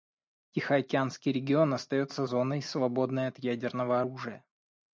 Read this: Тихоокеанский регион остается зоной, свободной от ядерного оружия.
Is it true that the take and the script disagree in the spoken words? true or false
false